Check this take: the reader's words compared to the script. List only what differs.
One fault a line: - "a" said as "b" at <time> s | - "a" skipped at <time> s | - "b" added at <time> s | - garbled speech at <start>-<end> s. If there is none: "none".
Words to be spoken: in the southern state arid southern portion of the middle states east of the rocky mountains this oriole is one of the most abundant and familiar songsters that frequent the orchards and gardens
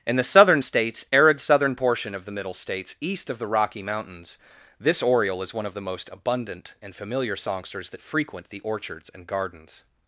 - "state" said as "states" at 0.6 s